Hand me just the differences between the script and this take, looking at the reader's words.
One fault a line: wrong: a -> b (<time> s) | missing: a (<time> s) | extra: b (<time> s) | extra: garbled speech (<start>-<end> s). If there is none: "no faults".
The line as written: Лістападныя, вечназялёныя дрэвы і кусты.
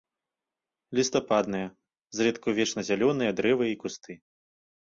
extra: зрэдку (2.2 s)